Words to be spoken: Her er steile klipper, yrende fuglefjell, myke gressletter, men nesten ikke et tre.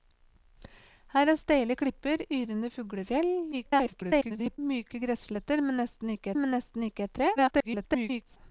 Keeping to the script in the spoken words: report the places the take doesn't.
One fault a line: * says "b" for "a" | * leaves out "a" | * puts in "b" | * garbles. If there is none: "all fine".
* garbles
* puts in "men nesten ikke"
* garbles